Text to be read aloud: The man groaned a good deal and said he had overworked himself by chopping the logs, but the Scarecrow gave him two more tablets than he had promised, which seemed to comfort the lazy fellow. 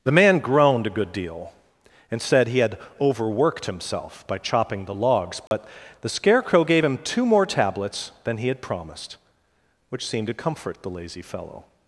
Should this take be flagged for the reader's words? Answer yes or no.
no